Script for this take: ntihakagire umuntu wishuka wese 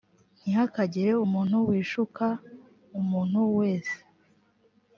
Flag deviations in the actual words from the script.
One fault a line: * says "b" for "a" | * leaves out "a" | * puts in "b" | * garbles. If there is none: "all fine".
* puts in "umuntu"